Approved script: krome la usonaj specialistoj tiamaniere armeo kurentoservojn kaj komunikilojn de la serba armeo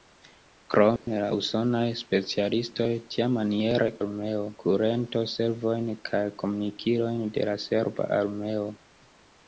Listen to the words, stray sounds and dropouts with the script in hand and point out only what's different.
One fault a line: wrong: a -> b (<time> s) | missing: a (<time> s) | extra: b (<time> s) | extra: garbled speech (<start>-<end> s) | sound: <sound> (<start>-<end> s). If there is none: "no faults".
sound: dropout (1.0-1.1 s)